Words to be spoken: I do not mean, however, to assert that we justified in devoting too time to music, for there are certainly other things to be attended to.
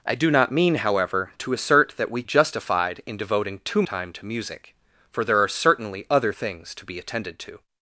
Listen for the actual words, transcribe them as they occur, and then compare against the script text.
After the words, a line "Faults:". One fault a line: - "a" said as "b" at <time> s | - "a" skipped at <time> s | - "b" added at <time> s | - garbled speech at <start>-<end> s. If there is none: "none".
I do not mean, however, to assert that we justified in devoting too time to music, for there are certainly other things to be attended to.
Faults:
none